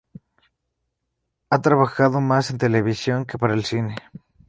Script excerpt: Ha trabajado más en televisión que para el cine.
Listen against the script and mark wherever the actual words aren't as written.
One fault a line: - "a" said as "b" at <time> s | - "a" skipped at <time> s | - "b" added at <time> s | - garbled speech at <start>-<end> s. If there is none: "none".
none